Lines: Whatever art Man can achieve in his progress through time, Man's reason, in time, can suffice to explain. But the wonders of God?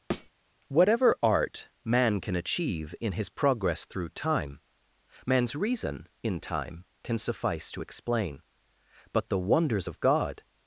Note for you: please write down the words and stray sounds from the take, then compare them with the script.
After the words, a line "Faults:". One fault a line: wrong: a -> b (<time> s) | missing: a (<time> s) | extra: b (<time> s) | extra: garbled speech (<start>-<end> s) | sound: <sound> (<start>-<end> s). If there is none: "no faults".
Whatever art Man can achieve in his progress through time, Man's reason, in time, can suffice to explain. But the wonders of God?
Faults:
sound: thud (0.1-0.3 s)